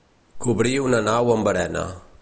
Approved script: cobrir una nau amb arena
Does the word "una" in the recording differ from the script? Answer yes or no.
no